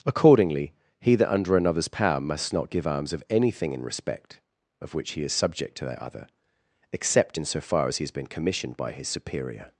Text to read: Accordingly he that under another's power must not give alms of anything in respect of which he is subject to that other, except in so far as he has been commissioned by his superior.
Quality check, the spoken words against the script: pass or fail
pass